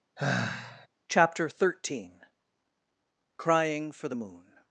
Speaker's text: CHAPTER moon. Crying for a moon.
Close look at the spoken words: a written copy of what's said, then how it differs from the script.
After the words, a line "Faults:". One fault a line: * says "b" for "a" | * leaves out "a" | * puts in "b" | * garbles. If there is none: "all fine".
CHAPTER thirteen. Crying for the moon.
Faults:
* says "thirteen" for "moon"
* says "the" for "a"